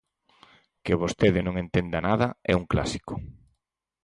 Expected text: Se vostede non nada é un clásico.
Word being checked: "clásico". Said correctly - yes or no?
yes